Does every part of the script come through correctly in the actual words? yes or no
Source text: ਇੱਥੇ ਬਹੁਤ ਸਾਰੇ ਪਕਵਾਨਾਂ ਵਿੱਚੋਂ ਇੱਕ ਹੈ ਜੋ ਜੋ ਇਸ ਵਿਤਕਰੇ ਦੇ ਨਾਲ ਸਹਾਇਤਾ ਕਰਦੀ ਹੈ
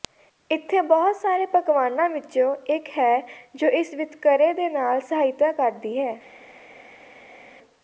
no